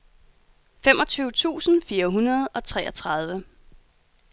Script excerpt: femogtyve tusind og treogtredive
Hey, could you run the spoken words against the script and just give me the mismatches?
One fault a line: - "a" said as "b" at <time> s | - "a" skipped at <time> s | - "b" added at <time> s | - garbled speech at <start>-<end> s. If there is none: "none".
- "fire hundrede" added at 1.8 s